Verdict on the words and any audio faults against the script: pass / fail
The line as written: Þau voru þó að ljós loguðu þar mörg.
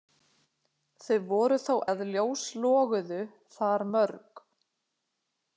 pass